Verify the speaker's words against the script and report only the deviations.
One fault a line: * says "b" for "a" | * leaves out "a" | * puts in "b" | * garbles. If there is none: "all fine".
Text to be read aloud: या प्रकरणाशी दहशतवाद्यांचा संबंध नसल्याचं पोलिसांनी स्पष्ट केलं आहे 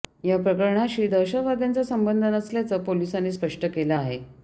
all fine